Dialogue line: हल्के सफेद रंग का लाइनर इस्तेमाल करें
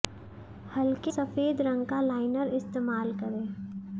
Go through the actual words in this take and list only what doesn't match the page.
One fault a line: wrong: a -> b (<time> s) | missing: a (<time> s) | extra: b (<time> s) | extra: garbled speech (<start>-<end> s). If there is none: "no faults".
no faults